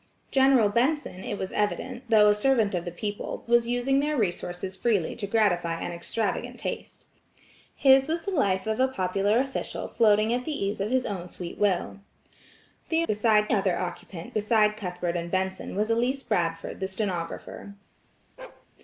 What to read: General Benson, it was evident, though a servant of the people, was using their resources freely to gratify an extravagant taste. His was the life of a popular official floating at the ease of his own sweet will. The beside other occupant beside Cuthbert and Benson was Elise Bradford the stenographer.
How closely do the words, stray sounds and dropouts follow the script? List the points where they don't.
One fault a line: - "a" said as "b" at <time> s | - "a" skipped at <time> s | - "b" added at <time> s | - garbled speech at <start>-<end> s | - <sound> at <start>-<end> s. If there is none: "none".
- bark at 18.4-18.7 s